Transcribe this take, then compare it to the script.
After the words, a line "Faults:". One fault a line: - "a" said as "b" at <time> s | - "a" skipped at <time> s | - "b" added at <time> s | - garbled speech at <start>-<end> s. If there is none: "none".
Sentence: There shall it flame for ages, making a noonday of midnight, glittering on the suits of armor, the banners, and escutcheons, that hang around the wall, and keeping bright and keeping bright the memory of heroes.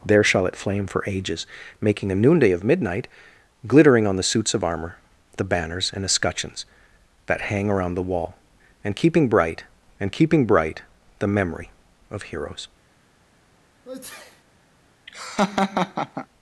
There shall it flame for ages, making a noonday of midnight, glittering on the suits of armor, the banners, and escutcheons, that hang around the wall, and keeping bright and keeping bright the memory of heroes.
Faults:
none